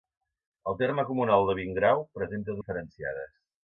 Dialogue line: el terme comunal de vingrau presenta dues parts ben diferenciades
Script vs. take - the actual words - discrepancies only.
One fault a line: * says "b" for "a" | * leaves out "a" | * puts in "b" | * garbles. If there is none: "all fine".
* leaves out "dues parts ben"